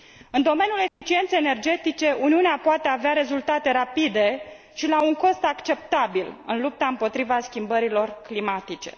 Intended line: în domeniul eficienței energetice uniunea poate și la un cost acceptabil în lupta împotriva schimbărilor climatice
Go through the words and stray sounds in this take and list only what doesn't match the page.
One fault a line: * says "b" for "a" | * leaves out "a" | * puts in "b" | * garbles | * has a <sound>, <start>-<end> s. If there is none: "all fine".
* has a dropout, 0.9-1.0 s
* puts in "avea rezultate rapide"